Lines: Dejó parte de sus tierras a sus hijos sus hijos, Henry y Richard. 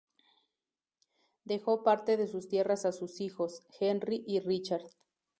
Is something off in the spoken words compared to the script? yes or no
yes